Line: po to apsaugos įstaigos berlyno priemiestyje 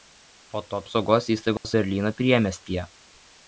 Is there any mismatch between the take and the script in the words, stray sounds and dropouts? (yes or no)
yes